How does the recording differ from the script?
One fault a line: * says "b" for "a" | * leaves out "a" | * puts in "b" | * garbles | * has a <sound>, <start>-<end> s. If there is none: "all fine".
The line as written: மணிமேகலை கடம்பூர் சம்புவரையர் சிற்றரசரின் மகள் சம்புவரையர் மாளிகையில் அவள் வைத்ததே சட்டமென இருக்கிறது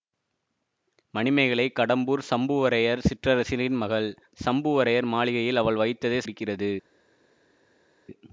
* leaves out "சட்டமென"